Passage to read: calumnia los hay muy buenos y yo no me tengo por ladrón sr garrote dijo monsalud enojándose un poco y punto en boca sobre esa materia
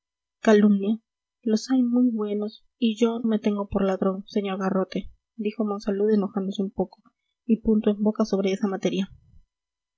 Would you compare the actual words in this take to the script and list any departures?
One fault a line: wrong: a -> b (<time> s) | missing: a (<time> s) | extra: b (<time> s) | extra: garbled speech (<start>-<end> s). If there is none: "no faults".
missing: no (3.2 s)